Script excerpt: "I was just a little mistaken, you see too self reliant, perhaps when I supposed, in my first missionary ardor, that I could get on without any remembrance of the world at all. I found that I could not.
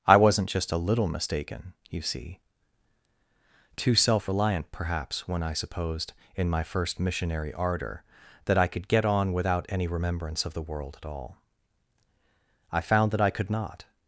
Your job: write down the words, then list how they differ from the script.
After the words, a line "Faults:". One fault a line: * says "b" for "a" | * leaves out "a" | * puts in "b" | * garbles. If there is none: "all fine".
"I wasn't just a little mistaken, you see too self reliant, perhaps when I supposed, in my first missionary ardor, that I could get on without any remembrance of the world at all. I found that I could not.
Faults:
* says "wasn't" for "was"